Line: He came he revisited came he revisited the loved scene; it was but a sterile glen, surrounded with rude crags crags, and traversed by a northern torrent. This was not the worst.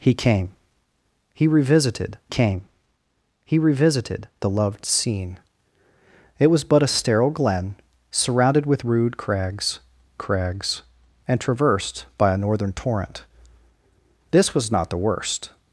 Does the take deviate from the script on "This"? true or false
false